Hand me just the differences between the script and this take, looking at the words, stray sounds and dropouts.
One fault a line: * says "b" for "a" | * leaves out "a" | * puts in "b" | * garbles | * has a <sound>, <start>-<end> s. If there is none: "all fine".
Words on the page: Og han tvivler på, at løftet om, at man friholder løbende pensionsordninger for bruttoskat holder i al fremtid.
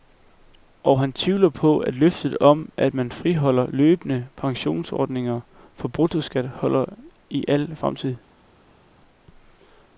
all fine